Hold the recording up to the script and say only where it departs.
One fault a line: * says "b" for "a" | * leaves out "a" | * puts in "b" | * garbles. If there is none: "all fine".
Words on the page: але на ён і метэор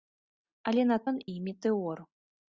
all fine